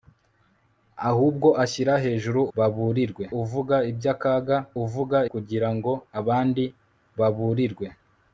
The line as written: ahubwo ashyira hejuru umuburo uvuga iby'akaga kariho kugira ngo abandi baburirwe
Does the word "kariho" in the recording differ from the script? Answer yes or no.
yes